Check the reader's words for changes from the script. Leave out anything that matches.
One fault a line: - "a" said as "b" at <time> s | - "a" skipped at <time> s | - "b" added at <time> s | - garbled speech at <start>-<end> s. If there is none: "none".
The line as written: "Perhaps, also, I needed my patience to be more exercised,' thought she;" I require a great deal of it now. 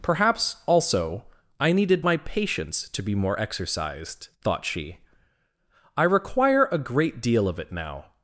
none